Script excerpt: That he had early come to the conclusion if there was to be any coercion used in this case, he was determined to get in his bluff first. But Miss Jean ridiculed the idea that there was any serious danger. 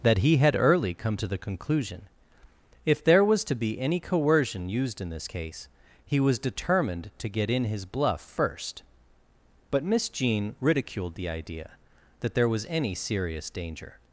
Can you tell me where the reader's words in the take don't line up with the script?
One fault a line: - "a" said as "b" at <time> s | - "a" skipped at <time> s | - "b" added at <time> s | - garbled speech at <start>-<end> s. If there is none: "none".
none